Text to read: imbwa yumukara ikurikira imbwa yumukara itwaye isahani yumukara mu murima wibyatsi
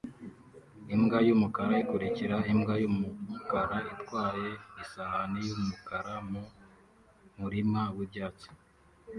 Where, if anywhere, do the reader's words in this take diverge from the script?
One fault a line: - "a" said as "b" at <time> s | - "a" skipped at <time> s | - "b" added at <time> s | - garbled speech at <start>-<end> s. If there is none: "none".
none